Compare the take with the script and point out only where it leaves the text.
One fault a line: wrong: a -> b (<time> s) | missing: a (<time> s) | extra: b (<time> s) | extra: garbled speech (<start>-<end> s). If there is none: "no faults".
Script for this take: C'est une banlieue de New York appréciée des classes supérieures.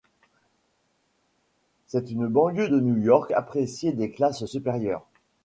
no faults